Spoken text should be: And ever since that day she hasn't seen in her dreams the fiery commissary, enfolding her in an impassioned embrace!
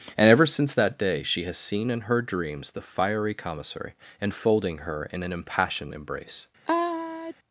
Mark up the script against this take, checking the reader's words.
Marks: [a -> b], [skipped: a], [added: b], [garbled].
And ever since that day she [hasn't -> has] seen in her dreams the fiery commissary, enfolding her in an impassioned embrace!